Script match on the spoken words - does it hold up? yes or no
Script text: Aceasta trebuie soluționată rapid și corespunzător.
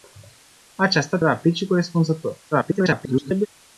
no